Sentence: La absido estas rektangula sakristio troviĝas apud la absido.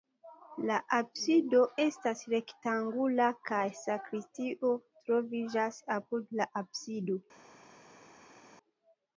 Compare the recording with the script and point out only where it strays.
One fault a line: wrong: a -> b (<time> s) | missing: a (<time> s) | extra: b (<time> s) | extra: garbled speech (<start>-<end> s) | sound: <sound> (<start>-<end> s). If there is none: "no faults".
extra: kaj (3.5 s)